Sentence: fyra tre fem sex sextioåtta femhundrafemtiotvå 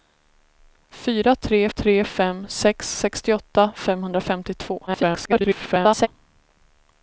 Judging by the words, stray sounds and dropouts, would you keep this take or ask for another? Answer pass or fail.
fail